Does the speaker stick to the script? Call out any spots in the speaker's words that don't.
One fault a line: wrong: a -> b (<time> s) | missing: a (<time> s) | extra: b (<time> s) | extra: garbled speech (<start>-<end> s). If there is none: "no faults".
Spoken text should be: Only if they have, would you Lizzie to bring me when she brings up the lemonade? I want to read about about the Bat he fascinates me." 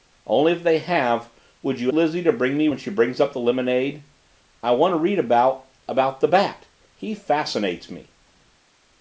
no faults